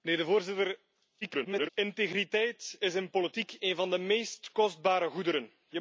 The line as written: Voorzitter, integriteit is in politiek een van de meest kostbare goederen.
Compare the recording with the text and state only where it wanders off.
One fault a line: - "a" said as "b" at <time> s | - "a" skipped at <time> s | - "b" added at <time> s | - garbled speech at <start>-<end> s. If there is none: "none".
- garbled speech at 1.2-1.7 s